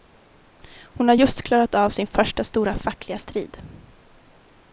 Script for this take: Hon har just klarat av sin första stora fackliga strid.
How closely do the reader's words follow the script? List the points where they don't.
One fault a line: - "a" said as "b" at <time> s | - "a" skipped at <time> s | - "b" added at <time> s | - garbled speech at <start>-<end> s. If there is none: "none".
none